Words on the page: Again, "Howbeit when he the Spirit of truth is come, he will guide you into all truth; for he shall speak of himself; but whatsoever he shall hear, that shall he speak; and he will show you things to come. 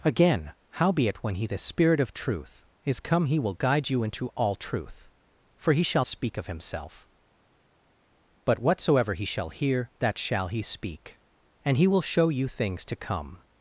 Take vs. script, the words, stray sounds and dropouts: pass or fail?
pass